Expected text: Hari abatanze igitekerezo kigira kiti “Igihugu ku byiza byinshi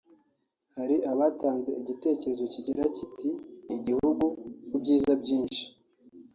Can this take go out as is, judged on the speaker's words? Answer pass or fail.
pass